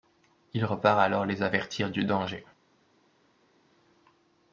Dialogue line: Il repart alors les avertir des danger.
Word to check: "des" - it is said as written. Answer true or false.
false